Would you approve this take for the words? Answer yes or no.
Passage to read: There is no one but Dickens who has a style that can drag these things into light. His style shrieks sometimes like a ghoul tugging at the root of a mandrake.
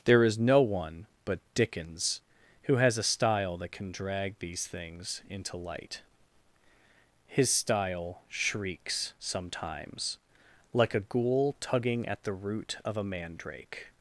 yes